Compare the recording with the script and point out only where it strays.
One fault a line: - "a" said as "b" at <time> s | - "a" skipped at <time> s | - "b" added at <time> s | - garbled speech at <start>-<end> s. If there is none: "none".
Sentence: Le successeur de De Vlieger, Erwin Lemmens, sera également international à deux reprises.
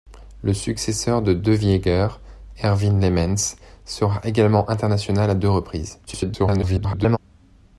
- garbled speech at 6.1-7.2 s